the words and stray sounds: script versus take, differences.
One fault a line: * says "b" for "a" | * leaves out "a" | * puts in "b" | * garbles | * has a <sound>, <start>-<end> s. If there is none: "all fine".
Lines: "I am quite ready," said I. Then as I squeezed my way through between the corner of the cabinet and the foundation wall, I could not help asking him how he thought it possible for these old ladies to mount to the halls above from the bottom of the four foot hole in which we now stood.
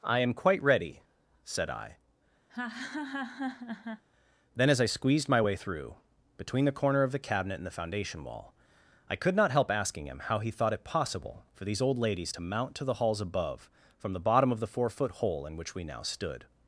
* has a laugh, 2.5-4.0 s